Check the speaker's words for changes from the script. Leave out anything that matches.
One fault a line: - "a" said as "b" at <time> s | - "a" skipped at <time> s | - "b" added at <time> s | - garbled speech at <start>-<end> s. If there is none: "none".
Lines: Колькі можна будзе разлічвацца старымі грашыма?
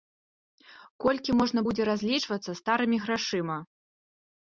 none